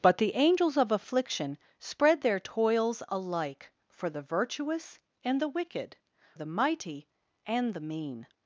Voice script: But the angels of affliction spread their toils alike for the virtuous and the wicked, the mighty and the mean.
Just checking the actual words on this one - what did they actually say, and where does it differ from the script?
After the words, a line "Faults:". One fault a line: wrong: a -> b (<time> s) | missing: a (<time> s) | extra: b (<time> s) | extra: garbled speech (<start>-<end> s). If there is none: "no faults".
But the angels of affliction spread their toils alike for the virtuous and the wicked, the mighty and the mean.
Faults:
no faults